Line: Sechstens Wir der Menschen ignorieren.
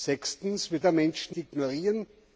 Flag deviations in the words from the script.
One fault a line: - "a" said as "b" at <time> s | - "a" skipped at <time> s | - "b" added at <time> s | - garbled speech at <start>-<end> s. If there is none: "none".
none